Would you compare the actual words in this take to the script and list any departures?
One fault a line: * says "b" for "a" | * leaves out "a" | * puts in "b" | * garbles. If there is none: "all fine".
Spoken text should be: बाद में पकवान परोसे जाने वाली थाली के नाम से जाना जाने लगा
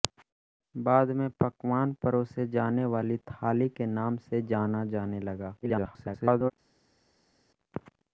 * garbles